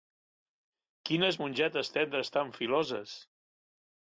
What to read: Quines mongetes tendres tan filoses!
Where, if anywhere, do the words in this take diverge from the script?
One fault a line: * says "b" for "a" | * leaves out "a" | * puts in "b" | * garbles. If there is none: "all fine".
all fine